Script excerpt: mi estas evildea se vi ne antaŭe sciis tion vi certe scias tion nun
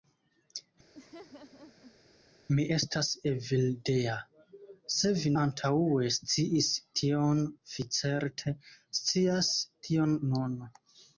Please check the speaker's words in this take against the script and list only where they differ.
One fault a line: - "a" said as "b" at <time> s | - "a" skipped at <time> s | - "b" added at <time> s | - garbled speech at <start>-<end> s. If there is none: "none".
- "ne" skipped at 5.3 s